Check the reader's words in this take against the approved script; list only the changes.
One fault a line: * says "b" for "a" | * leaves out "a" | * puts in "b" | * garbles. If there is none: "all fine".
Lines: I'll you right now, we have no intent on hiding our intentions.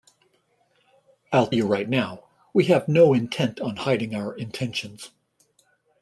all fine